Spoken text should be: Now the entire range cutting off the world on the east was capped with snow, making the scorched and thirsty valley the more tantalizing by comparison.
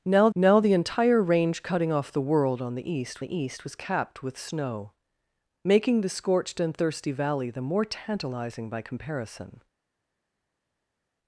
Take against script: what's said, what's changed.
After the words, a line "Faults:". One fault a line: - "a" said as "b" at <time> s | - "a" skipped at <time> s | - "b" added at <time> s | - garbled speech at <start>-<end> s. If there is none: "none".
Now now the entire range cutting off the world on the east the east was capped with snow, making the scorched and thirsty valley the more tantalizing by comparison.
Faults:
- "now" added at 0.3 s
- "the east" added at 3.2 s